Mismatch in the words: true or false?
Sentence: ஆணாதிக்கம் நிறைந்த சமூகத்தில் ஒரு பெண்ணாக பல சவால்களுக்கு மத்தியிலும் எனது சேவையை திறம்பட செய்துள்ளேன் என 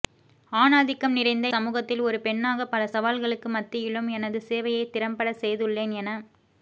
false